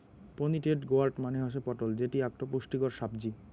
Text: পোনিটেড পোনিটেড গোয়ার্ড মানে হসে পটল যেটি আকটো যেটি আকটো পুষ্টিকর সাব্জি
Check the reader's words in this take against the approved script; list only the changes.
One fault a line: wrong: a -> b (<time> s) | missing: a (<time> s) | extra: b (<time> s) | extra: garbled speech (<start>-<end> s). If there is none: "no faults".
missing: পোনিটেড (0.8 s)
missing: যেটি আকটো (2.4 s)